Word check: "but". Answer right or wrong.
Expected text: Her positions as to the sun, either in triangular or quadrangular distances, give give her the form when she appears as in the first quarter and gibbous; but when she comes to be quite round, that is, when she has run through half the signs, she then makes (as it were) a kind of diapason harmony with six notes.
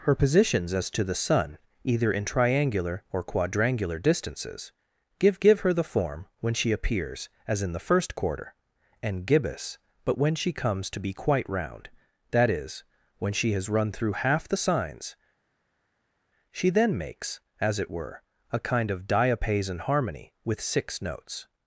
right